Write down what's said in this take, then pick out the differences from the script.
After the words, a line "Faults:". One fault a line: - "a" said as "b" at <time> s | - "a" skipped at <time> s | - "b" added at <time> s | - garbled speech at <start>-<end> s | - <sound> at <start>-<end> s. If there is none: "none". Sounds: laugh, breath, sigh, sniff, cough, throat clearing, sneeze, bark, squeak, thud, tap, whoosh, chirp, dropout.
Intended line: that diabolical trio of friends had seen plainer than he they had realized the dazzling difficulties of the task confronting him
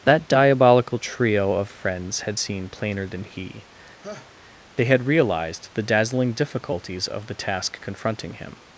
that diabolical trio of friends had seen plainer than he they had realized the dazzling difficulties of the task confronting him
Faults:
- laugh at 4.0-4.3 s